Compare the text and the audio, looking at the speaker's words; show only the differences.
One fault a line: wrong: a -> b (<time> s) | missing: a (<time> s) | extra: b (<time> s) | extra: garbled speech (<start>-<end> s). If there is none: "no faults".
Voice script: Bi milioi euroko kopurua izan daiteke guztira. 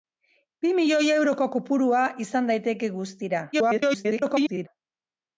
extra: garbled speech (3.5-4.7 s)